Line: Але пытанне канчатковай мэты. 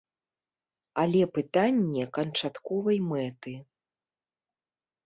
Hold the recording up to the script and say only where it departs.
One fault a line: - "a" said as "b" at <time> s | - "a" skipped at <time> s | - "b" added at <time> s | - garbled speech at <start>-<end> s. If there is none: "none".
none